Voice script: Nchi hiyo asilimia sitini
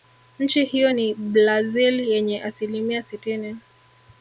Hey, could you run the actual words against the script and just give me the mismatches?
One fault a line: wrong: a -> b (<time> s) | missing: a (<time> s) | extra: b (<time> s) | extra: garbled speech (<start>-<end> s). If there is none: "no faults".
extra: ni Blazil yenye (0.9 s)